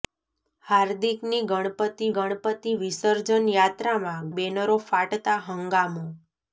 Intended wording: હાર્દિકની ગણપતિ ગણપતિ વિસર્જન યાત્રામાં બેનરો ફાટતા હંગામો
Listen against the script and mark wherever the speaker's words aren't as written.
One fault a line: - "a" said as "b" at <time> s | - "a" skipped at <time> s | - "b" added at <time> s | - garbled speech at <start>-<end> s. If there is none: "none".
none